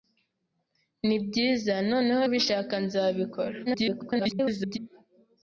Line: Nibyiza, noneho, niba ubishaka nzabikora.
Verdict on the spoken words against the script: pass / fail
fail